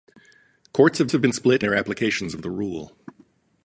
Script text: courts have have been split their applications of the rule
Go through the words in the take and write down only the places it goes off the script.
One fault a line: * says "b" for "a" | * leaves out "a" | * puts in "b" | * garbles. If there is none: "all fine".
all fine